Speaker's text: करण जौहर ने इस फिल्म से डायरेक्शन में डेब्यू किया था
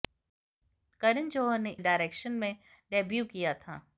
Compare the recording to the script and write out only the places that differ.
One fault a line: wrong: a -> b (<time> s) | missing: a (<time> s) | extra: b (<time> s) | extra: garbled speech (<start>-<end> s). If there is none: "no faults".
missing: इस फिल्म से (1.7 s)